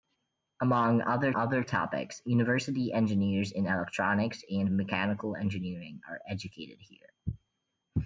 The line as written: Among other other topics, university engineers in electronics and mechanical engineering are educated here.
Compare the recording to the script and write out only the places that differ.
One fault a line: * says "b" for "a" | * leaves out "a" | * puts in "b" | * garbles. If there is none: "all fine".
all fine